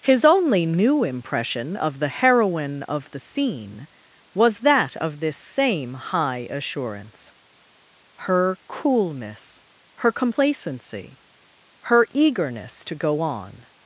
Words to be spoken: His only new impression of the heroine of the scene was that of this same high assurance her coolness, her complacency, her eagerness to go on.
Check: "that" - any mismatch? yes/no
no